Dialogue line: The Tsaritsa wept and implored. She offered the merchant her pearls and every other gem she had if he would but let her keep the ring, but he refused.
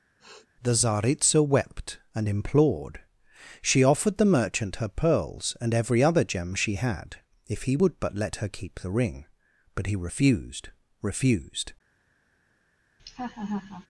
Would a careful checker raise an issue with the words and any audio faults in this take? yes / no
yes